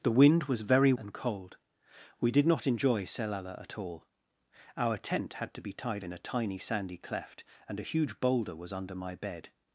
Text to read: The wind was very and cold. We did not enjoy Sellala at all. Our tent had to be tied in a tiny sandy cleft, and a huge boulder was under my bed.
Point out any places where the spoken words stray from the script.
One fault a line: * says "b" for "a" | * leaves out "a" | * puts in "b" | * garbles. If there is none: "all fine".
all fine